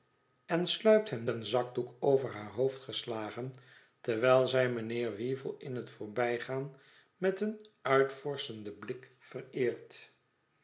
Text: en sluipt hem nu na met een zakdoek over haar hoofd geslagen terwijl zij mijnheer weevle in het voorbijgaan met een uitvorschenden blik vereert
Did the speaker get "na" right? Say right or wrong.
wrong